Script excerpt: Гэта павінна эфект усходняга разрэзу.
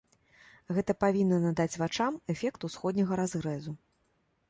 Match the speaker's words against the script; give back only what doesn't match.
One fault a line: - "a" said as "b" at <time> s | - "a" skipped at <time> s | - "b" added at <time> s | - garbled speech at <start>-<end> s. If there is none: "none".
- "надаць вачам" added at 1.4 s